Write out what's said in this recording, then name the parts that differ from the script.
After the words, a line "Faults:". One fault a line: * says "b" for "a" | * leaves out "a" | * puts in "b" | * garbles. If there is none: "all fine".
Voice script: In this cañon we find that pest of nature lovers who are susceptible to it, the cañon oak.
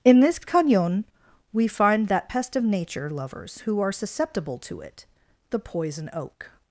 In this cañon we find that pest of nature lovers who are susceptible to it, the poison oak.
Faults:
* says "poison" for "cañon"